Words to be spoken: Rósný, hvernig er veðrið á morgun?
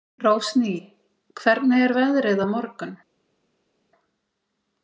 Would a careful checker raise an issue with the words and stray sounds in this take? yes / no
no